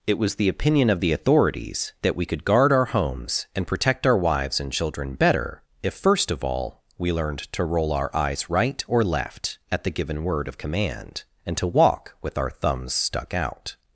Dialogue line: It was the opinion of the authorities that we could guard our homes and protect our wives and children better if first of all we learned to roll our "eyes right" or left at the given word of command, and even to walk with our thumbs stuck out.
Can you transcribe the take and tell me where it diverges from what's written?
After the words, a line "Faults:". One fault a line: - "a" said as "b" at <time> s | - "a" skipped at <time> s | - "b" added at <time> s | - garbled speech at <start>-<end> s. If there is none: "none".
It was the opinion of the authorities that we could guard our homes and protect our wives and children better if first of all we learned to roll our "eyes right" or left at the given word of command, and to walk with our thumbs stuck out.
Faults:
- "even" skipped at 11.6 s